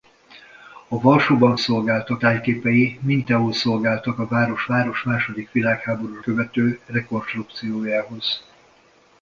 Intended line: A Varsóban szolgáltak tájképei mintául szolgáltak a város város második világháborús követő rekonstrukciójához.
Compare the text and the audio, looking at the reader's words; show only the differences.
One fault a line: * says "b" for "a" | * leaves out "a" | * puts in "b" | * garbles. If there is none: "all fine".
all fine